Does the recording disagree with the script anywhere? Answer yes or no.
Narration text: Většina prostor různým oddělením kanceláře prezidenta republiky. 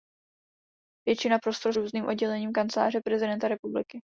no